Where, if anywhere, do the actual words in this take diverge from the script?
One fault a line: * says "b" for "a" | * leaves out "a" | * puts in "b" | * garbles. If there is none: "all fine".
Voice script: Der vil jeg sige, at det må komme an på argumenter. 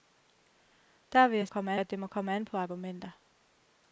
* says "komme" for "sige"